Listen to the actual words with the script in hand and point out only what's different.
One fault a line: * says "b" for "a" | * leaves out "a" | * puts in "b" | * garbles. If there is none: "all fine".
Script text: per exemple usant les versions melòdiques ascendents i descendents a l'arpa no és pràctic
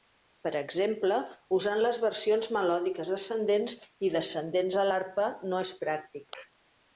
all fine